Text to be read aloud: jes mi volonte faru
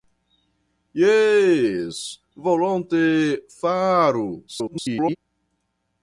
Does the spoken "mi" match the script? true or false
false